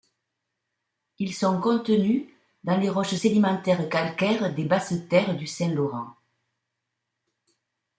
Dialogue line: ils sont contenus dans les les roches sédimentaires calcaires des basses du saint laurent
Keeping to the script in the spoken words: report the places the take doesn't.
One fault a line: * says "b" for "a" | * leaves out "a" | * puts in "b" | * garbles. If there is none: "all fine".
* leaves out "les"
* puts in "terres"